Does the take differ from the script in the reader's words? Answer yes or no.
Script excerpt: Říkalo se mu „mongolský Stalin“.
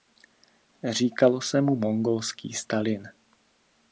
no